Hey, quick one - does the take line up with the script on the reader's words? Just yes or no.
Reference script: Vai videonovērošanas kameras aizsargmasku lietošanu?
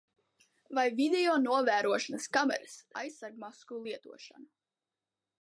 yes